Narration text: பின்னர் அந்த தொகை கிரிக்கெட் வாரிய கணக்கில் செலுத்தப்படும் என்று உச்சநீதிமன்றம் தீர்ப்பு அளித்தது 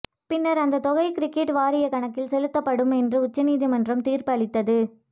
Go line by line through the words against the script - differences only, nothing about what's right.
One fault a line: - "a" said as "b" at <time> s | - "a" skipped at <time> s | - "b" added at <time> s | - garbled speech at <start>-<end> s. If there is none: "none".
none